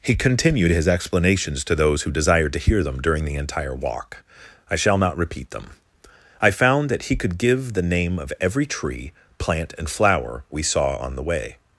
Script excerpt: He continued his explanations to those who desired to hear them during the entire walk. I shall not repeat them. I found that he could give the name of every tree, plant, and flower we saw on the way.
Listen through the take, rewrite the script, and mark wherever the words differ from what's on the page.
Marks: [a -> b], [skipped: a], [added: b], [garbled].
He continued his explanations to those who desired to hear them during the entire walk. I shall not repeat them. I found that he could give the name of every tree, plant, and flower we saw on the way.